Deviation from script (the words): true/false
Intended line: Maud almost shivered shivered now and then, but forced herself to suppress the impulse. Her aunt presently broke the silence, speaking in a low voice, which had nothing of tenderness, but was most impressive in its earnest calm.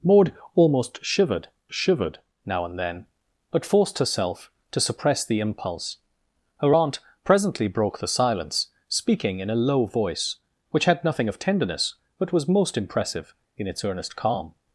false